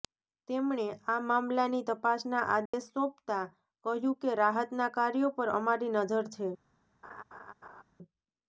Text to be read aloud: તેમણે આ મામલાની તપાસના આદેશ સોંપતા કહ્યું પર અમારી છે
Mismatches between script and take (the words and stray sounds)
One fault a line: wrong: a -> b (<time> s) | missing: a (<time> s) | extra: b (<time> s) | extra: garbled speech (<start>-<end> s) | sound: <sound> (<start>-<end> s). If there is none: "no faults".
sound: dropout (2.7-2.7 s)
extra: કે રાહતના કાર્યો (4.2 s)
extra: નજર (6.0 s)
sound: laugh (7.0-7.8 s)